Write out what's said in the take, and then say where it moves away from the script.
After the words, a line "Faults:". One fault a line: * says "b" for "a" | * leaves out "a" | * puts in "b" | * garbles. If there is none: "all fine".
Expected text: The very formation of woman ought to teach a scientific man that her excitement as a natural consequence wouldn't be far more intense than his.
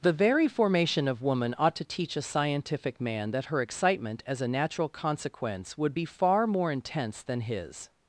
The very formation of woman ought to teach a scientific man that her excitement as a natural consequence would be far more intense than his.
Faults:
* says "would" for "wouldn't"